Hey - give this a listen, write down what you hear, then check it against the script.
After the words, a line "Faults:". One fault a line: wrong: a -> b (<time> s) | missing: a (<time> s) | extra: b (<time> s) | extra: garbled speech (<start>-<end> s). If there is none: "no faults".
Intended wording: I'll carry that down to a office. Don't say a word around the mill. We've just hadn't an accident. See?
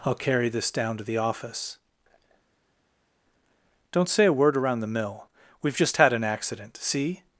I'll carry this down to the office. Don't say a word around the mill. We've just had an accident. See?
Faults:
wrong: that -> this (0.5 s)
wrong: a -> the (1.0 s)
wrong: hadn't -> had (6.0 s)